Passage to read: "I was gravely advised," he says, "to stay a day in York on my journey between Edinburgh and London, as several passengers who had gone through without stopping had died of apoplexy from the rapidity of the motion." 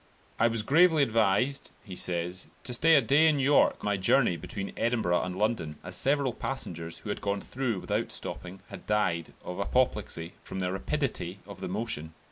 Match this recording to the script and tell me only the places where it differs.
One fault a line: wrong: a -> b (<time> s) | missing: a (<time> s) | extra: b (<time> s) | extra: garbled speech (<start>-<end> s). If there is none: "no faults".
missing: on (3.9 s)